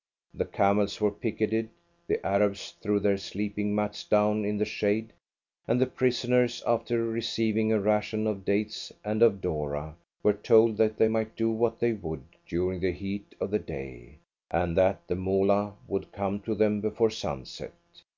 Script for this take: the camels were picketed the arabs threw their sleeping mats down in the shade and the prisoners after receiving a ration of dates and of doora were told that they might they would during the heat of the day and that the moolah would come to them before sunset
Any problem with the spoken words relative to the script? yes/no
yes